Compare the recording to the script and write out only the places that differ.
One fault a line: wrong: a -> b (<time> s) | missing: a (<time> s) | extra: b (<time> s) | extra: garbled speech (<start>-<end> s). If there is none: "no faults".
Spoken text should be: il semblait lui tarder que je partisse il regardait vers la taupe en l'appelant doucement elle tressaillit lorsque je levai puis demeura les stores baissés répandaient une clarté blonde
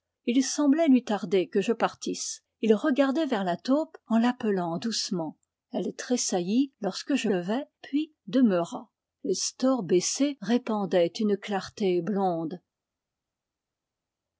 no faults